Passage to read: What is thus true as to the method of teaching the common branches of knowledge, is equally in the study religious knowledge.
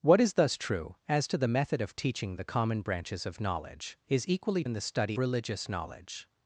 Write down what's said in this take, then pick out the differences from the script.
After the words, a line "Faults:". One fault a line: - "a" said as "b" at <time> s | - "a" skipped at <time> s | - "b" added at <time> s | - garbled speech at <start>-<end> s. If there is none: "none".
What is thus true as to the method of teaching the common branches of knowledge, is equally in the study religious knowledge.
Faults:
none